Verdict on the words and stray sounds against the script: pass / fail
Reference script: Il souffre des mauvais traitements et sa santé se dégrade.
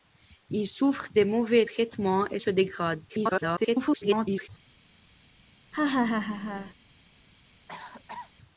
fail